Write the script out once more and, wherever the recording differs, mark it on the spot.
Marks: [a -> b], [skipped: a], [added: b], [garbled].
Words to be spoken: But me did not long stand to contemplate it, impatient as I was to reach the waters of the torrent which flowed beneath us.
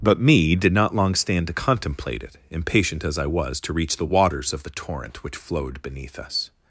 But me did not long stand to contemplate it, impatient as I was to reach the waters of the torrent which flowed beneath us.